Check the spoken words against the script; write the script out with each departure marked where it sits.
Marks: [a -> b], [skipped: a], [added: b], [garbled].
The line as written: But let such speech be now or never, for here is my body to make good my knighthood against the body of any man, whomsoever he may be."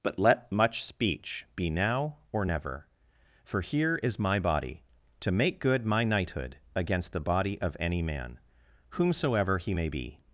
But let [such -> much] speech be now or never, for here is my body to make good my knighthood against the body of any man, whomsoever he may be."